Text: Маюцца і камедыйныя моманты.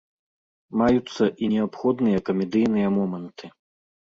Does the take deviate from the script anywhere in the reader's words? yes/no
yes